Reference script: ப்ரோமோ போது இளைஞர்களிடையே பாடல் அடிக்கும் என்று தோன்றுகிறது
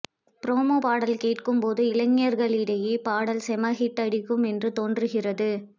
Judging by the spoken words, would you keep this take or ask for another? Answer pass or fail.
fail